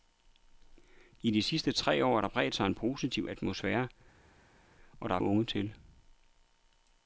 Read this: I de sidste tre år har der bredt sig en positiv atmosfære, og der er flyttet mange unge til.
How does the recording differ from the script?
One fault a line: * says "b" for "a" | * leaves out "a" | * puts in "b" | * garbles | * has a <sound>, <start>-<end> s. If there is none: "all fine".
* leaves out "flyttet mange"